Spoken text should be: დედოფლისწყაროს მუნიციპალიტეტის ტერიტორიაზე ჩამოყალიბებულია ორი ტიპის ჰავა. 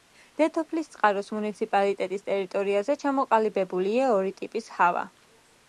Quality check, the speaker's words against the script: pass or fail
pass